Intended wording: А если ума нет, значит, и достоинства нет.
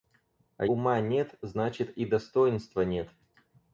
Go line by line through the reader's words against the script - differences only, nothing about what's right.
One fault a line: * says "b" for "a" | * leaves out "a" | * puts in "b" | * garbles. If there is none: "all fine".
* leaves out "если"